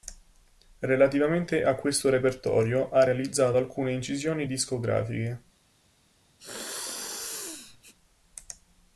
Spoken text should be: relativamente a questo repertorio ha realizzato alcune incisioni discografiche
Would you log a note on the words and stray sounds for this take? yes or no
yes